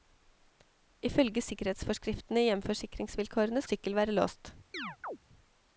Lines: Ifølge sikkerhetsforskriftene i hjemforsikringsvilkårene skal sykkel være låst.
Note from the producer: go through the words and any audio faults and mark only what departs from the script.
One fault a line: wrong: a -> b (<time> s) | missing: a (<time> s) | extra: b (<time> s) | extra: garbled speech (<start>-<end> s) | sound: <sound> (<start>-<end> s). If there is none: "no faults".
missing: skal (3.6 s)
sound: chirp (4.7-5.2 s)